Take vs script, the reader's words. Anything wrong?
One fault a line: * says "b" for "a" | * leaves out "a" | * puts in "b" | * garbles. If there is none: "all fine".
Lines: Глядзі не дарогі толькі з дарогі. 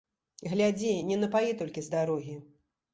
* says "напаі" for "дарогі"